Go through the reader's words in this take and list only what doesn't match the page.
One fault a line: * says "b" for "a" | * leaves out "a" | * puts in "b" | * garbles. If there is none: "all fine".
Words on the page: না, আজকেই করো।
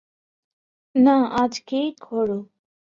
all fine